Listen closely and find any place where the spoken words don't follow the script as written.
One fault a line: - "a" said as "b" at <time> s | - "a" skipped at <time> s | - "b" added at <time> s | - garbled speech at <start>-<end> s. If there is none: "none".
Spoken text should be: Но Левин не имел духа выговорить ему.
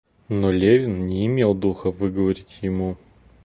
none